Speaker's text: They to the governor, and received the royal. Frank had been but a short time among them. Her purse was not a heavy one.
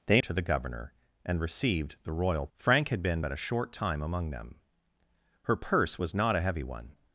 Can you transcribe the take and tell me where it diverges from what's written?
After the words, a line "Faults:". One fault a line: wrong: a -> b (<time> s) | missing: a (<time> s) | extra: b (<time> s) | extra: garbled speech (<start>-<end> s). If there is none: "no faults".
They to the governor, and received the royal. Frank had been but a short time among them. Her purse was not a heavy one.
Faults:
no faults